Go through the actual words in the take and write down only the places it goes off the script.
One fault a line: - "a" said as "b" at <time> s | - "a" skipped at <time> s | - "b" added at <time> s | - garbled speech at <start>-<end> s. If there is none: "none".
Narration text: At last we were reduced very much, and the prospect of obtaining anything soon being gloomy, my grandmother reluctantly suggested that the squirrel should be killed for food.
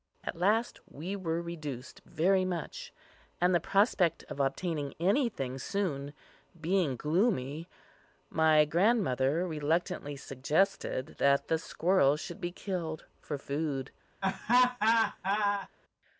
none